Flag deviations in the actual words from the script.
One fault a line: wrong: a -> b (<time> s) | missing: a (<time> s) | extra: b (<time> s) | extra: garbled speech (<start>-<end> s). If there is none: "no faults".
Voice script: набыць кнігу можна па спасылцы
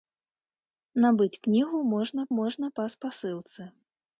extra: можна (2.4 s)